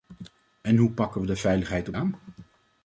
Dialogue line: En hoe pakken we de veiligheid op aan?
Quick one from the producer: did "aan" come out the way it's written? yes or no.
yes